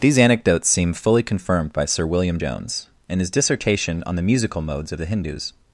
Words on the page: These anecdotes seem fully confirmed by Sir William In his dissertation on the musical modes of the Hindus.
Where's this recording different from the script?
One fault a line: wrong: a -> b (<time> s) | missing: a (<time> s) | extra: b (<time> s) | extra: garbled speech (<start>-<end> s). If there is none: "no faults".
extra: Jones (2.4 s)